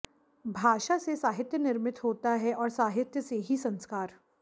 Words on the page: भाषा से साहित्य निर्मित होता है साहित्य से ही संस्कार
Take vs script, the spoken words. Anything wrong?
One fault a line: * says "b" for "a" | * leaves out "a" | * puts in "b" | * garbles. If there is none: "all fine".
* puts in "और"